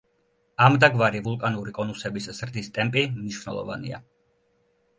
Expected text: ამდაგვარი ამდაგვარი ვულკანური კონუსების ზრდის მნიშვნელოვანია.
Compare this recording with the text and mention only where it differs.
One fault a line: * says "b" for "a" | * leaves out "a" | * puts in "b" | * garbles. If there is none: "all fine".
* leaves out "ამდაგვარი"
* puts in "ტემპი"